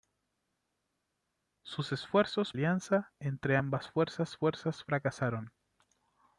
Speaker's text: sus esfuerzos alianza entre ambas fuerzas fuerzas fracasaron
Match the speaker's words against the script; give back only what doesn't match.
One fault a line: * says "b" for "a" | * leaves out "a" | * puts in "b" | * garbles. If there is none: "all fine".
all fine